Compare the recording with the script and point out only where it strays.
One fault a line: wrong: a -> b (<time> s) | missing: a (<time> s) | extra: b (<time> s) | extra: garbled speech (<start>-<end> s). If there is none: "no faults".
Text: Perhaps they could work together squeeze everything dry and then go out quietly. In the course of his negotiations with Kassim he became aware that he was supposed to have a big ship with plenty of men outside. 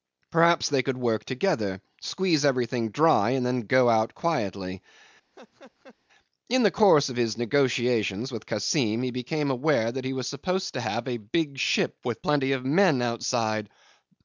no faults